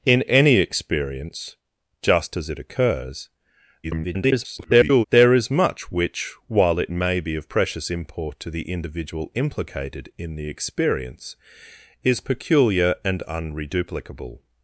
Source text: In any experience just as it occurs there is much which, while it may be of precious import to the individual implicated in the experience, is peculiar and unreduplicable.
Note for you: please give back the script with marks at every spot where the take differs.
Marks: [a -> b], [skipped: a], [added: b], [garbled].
In any experience just as it occurs [garbled] there is much which, while it may be of precious import to the individual implicated in the experience, is peculiar and unreduplicable.